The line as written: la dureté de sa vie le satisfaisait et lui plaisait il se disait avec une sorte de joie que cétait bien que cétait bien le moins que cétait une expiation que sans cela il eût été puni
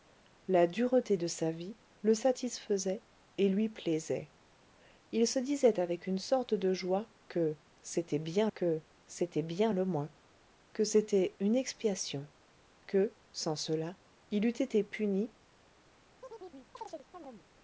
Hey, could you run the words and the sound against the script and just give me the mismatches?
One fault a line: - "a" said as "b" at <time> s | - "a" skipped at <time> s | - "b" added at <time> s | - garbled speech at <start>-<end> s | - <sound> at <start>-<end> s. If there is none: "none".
- chirp at 16.2-17.5 s